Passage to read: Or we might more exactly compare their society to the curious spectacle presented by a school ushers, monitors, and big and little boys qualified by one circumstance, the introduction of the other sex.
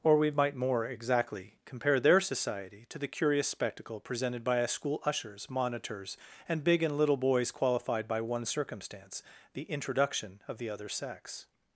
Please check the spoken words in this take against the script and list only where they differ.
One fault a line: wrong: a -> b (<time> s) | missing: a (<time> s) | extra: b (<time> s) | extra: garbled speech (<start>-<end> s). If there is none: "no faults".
no faults